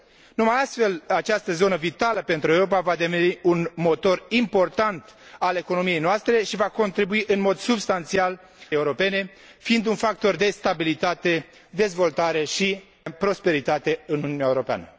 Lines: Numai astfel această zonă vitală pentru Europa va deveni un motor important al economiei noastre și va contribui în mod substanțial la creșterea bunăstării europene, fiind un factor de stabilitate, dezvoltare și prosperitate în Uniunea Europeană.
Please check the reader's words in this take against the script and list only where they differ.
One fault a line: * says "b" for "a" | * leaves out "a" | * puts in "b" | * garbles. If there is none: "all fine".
* leaves out "la creșterea bunăstării"